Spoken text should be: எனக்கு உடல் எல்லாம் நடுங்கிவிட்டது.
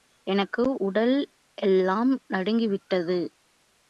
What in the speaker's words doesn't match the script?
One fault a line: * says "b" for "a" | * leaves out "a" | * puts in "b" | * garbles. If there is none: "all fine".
all fine